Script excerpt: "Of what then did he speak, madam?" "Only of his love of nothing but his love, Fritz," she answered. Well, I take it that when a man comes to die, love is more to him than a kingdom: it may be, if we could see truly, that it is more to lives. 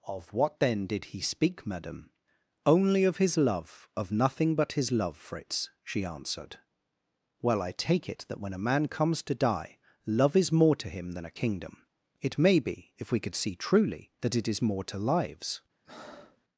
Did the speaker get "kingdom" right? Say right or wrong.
right